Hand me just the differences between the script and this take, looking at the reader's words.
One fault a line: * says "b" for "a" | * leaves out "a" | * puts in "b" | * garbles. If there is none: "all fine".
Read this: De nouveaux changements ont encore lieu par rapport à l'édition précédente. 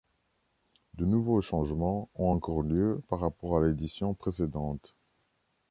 all fine